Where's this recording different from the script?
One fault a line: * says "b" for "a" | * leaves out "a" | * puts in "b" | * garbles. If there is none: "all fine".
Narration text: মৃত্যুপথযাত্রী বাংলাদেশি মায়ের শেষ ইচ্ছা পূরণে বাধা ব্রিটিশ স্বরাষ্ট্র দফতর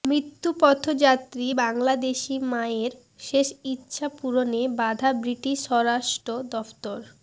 all fine